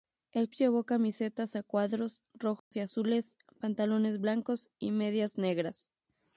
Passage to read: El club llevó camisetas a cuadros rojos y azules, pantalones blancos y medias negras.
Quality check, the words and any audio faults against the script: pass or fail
fail